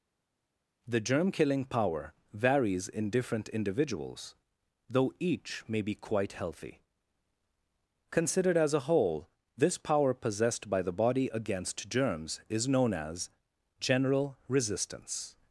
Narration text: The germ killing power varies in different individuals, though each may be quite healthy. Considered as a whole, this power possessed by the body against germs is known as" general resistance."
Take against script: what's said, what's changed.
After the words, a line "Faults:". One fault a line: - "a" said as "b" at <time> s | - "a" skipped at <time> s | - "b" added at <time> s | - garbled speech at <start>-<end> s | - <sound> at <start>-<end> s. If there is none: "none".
The germ killing power varies in different individuals, though each may be quite healthy. Considered as a whole, this power possessed by the body against germs is known as" general resistance."
Faults:
none